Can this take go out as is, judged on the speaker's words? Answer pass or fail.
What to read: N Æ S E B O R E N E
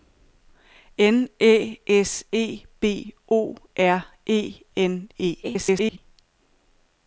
fail